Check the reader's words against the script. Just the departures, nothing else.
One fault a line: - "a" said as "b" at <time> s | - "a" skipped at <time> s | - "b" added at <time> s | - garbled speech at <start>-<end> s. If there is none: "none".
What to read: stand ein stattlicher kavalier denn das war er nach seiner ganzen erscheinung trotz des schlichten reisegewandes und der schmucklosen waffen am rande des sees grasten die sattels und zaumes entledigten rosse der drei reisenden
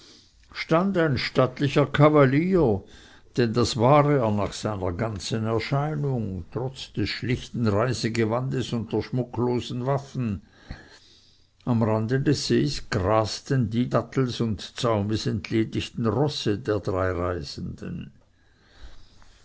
none